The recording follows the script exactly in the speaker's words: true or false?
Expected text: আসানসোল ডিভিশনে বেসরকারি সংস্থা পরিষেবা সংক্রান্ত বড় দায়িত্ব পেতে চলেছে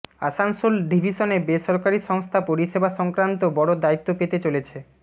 true